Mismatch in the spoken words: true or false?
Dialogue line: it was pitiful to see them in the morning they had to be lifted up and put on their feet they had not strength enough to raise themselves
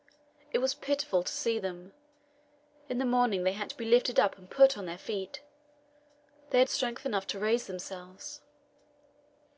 true